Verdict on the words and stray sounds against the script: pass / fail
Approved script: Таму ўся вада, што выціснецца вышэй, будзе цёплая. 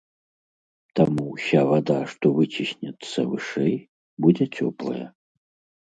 pass